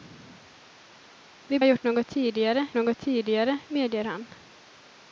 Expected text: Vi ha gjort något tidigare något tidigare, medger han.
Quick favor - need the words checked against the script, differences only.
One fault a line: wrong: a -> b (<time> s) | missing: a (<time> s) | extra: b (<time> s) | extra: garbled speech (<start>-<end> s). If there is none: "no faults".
no faults